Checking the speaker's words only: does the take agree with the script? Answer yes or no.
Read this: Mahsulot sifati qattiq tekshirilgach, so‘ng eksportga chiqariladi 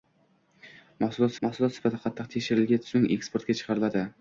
no